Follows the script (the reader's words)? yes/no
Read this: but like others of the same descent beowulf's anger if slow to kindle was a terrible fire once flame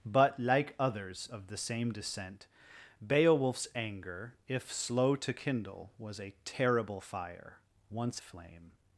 yes